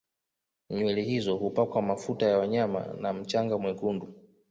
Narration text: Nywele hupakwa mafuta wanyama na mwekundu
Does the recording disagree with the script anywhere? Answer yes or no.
yes